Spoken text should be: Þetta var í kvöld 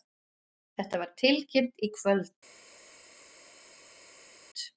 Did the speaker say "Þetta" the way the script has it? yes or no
yes